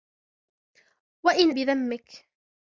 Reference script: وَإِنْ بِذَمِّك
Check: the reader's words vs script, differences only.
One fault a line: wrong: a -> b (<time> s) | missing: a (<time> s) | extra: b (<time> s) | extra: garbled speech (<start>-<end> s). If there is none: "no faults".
no faults